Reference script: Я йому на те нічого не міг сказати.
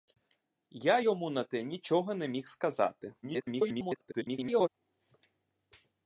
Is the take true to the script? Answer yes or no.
no